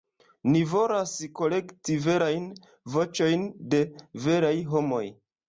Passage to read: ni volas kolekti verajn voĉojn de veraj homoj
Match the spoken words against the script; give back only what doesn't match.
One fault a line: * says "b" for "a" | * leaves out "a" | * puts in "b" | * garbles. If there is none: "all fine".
all fine